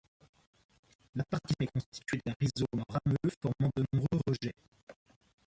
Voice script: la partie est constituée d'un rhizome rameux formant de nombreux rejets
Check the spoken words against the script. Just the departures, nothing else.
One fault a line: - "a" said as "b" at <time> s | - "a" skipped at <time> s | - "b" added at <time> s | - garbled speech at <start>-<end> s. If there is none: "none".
none